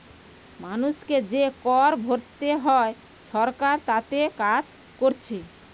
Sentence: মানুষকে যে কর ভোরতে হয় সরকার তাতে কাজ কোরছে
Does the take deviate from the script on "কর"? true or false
false